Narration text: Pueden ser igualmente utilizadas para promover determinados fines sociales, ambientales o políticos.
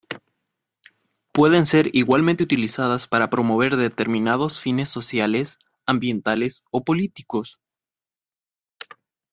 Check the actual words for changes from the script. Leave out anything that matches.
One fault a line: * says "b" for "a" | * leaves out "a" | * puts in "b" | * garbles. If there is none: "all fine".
all fine